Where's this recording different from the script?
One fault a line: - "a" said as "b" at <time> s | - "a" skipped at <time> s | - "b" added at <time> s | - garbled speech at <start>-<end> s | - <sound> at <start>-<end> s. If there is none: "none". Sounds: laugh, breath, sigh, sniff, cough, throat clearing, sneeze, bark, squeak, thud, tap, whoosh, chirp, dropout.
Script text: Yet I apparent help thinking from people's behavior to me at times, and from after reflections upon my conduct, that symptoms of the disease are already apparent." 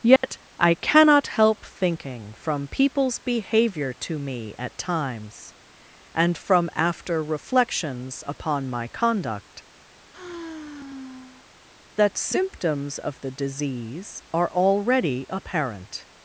- dropout at 0.2-0.2 s
- "apparent" said as "cannot" at 0.8 s
- sigh at 10.1-11.5 s